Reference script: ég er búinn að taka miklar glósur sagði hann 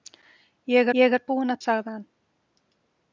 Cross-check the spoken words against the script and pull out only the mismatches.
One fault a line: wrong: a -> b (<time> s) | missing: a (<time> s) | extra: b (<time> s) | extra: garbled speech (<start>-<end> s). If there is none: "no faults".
extra: ég (1.0 s)
missing: taka miklar glósur (1.6 s)